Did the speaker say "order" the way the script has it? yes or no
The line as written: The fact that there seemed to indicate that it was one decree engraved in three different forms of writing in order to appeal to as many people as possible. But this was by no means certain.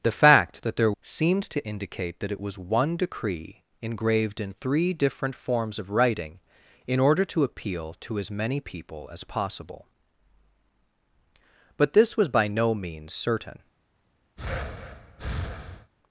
yes